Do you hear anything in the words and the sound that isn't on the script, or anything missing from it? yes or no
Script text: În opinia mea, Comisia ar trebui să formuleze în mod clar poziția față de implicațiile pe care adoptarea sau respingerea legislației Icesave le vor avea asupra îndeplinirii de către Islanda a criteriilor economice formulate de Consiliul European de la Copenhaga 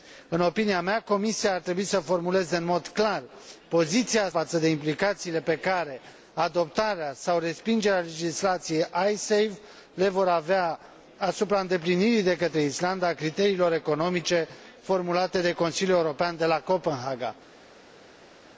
no